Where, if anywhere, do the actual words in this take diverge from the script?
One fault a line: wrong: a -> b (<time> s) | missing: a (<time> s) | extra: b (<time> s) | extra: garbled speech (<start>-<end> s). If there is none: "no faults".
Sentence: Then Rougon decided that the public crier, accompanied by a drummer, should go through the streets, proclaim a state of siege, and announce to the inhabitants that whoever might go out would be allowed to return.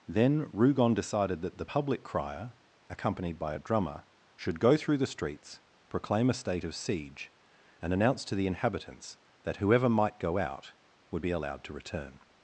no faults